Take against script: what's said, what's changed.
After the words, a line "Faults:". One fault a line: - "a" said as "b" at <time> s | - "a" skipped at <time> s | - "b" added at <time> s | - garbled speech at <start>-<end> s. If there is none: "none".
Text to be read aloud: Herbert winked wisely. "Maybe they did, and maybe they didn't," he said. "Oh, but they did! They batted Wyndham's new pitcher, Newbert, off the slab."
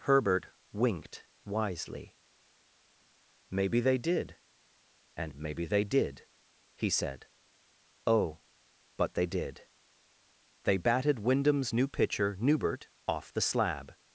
Herbert winked wisely. "Maybe they did, and maybe they did," he said. "Oh, but they did! They batted Wyndham's new pitcher, Newbert, off the slab."
Faults:
- "didn't" said as "did" at 5.8 s